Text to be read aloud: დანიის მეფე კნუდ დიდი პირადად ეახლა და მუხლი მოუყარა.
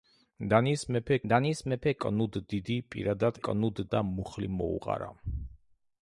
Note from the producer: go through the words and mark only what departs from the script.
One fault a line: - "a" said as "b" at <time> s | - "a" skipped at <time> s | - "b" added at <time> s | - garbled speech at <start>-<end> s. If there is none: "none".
- "დანიის მეფე" added at 1.3 s
- "ეახლა" said as "კნუდ" at 3.5 s